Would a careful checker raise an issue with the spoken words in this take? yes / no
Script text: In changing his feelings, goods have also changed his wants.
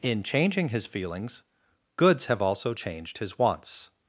no